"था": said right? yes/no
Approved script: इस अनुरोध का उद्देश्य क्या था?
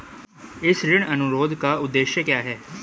no